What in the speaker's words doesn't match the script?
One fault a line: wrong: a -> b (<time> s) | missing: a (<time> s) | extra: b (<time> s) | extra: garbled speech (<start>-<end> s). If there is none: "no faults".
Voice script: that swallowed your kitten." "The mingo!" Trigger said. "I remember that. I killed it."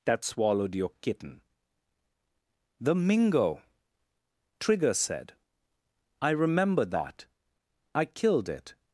no faults